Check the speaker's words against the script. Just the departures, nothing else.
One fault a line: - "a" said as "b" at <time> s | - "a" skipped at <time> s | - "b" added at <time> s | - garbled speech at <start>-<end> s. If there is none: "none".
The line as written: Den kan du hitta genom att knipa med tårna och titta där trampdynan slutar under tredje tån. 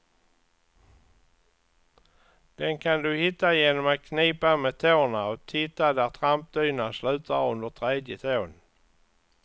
none